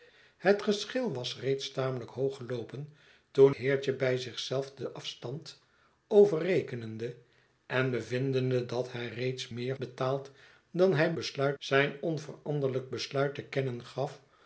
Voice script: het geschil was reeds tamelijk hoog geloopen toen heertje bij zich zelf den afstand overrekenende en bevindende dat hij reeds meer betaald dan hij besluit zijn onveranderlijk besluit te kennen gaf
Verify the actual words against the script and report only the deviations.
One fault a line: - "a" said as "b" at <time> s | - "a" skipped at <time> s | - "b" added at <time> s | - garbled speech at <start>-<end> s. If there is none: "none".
none